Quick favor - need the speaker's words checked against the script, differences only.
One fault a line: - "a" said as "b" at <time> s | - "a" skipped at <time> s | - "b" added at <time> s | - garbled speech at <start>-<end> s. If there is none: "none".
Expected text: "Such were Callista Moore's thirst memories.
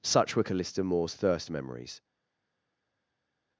none